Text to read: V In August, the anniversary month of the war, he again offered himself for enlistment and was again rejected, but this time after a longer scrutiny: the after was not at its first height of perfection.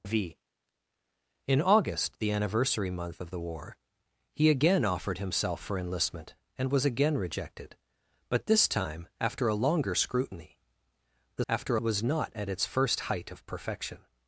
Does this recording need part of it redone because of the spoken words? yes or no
no